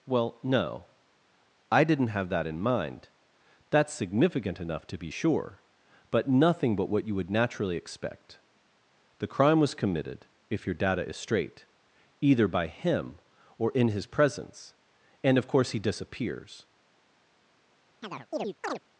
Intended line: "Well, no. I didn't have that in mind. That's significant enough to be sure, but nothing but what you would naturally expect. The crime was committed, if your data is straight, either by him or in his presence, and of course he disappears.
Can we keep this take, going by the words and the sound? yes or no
no